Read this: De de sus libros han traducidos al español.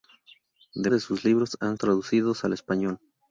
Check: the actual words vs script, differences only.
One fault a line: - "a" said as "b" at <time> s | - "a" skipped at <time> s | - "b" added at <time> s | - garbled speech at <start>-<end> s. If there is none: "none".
none